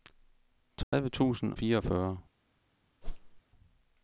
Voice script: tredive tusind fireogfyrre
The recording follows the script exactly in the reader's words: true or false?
true